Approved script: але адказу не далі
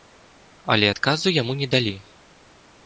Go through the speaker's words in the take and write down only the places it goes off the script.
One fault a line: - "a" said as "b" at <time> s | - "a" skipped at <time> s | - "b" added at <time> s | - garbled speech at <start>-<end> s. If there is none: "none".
- "яму" added at 1.4 s